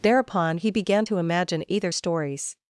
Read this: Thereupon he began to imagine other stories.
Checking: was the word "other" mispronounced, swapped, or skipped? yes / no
yes